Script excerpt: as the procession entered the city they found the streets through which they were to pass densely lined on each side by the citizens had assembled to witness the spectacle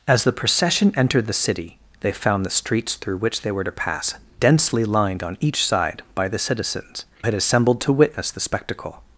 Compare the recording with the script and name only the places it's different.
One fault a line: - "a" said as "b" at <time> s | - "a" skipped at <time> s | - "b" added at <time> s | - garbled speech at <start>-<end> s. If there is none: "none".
none